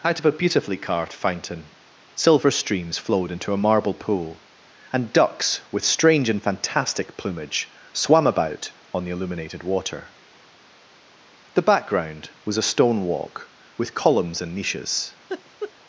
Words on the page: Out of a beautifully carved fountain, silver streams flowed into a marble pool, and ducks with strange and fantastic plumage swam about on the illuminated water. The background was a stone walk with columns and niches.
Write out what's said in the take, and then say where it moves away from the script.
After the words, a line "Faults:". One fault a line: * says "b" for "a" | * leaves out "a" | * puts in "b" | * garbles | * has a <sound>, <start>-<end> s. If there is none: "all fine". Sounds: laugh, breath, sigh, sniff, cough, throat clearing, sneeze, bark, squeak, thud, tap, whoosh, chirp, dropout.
Out of a beautifully carved fountain, silver streams flowed into a marble pool, and ducks with strange and fantastic plumage swam about on the illuminated water. The background was a stone walk with columns and niches.
Faults:
* has a laugh, 15.3-15.7 s